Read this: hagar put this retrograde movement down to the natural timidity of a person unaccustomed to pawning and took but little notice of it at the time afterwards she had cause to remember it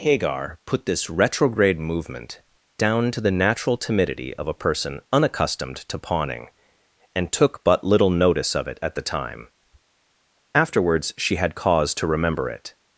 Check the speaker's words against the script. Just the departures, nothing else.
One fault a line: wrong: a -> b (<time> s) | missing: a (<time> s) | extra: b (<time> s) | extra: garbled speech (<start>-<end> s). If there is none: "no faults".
no faults